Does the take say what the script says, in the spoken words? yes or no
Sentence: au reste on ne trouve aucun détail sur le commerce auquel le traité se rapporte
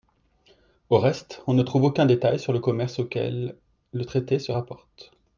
yes